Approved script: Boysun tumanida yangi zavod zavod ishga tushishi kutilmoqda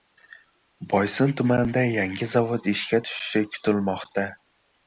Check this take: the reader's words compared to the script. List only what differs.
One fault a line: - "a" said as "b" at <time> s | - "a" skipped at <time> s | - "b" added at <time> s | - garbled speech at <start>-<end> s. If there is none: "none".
- "zavod" skipped at 2.7 s